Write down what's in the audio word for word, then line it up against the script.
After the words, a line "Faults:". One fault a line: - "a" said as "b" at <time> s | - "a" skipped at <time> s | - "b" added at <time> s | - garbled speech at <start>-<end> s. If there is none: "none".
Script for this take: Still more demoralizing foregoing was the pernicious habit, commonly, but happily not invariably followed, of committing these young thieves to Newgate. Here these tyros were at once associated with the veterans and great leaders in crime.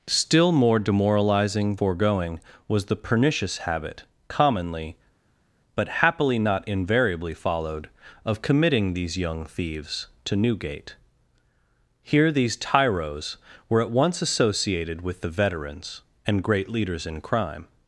Still more demoralizing foregoing was the pernicious habit, commonly, but happily not invariably followed, of committing these young thieves to Newgate. Here these tyros were at once associated with the veterans and great leaders in crime.
Faults:
none